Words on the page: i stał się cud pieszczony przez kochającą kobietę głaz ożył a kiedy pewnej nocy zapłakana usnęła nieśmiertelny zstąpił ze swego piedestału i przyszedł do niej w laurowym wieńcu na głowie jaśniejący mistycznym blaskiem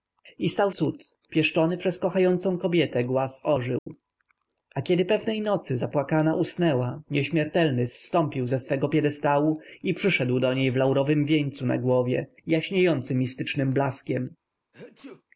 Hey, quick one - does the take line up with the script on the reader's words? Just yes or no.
no